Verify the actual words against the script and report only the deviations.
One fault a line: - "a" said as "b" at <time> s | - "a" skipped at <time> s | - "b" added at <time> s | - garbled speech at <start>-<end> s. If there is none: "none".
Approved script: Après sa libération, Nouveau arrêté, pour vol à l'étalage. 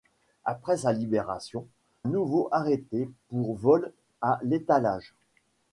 none